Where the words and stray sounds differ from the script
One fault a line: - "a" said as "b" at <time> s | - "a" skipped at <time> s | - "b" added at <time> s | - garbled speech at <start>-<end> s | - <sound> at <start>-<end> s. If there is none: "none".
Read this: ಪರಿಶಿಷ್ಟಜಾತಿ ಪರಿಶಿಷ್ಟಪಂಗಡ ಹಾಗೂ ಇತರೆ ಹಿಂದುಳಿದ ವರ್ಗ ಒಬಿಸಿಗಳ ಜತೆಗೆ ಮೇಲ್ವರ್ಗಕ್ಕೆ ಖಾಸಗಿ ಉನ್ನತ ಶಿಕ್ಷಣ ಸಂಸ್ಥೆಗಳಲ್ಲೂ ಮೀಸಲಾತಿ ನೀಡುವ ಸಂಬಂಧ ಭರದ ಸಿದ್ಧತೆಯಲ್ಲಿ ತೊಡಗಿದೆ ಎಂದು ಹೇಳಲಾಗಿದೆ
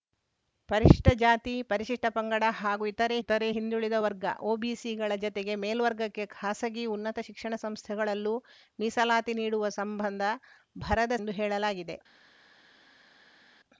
- "ಇತರೆ" added at 3.2 s
- "ಸಿದ್ಧತೆಯಲ್ಲಿ ತೊಡಗಿದೆ" skipped at 11.2 s